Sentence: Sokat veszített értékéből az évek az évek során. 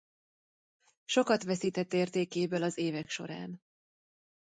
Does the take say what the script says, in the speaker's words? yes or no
no